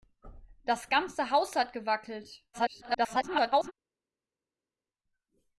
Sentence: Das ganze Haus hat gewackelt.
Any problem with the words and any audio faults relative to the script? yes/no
yes